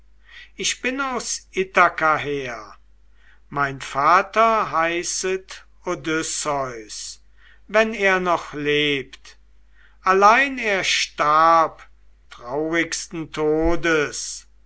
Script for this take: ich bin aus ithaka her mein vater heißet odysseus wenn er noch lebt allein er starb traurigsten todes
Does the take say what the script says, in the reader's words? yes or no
yes